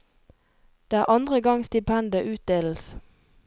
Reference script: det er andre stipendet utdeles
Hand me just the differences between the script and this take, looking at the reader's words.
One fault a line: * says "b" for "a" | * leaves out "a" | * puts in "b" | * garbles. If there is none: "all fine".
* puts in "gang"